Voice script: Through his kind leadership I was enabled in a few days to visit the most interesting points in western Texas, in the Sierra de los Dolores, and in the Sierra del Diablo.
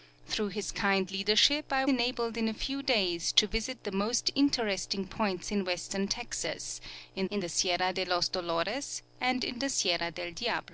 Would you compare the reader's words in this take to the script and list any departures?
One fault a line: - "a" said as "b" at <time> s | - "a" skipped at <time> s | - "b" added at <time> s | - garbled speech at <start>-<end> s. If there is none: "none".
- "was" skipped at 1.9 s
- "in" added at 7.3 s